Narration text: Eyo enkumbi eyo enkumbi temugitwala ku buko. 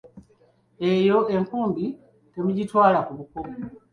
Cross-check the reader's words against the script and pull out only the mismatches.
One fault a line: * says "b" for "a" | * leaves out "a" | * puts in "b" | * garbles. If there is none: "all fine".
* leaves out "eyo enkumbi"